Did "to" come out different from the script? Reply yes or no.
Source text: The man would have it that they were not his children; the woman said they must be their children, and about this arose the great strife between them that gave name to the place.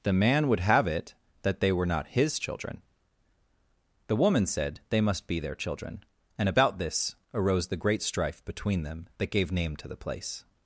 no